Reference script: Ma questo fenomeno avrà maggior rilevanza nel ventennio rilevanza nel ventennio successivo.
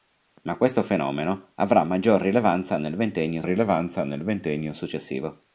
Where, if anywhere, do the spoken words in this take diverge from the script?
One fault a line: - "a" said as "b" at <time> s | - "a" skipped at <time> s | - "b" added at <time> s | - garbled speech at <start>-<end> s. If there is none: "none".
none